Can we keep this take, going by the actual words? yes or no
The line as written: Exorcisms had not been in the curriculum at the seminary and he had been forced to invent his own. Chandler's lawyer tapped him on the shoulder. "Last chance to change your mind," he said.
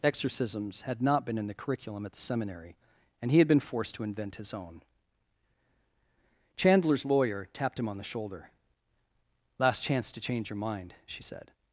no